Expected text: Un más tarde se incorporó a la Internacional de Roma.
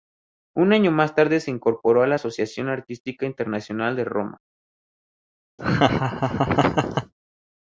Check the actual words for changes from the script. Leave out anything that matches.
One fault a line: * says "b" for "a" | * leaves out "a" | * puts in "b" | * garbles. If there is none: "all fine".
* puts in "año"
* puts in "Asociación Artística"